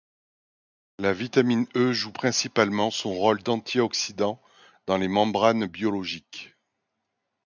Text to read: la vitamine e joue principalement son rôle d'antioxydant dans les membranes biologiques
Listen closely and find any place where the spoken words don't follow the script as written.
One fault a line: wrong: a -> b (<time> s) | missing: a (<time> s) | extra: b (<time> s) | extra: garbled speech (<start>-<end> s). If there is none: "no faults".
no faults